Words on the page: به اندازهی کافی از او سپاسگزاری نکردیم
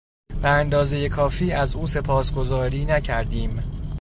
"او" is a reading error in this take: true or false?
false